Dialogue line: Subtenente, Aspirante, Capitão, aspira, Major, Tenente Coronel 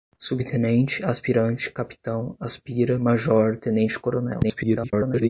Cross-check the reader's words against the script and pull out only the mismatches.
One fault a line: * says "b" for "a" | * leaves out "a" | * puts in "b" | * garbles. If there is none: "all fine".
* garbles